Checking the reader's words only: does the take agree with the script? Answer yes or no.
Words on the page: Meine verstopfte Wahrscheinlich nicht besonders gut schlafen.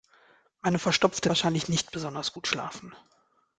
yes